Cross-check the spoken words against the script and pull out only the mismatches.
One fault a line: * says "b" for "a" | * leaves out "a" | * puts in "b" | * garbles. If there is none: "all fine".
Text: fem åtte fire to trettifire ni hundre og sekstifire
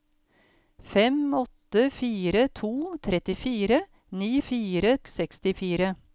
* says "fire" for "hundre"